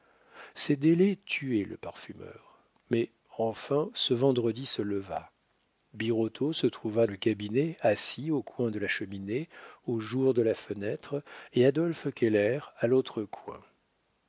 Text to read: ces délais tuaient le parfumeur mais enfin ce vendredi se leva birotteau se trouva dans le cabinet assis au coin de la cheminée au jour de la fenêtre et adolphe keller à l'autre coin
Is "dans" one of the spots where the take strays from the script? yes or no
yes